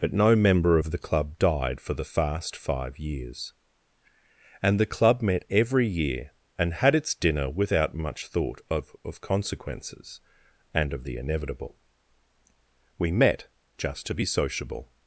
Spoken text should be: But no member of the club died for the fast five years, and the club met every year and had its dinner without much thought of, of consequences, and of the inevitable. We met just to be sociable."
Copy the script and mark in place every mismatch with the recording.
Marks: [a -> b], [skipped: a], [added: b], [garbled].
But no member of the club died for the fast five years, and the club met every year and had its dinner without much thought of, of consequences, and of the inevitable. We met just to be sociable."